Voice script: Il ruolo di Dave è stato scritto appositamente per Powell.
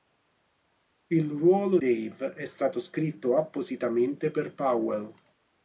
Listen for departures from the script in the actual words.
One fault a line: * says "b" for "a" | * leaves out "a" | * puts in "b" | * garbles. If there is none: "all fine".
* leaves out "di"